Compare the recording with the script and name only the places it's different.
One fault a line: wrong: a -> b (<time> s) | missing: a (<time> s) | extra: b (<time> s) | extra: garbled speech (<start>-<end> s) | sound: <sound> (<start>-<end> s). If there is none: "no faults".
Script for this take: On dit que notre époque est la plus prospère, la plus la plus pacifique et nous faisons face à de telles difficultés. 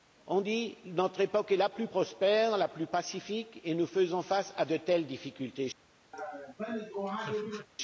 missing: la plus (2.9 s)
sound: laugh (6.1-7.7 s)